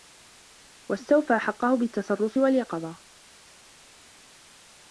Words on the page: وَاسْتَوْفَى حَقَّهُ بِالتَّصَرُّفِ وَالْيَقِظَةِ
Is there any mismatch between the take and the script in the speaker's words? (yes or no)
no